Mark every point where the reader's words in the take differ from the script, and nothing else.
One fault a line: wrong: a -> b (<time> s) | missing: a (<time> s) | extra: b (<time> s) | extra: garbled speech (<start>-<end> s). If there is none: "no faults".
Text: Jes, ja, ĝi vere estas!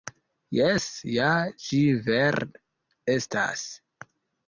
no faults